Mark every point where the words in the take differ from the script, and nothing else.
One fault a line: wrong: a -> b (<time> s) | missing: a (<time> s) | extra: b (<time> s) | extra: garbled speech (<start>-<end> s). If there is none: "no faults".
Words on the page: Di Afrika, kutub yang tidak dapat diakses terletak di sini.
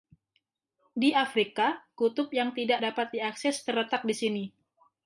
no faults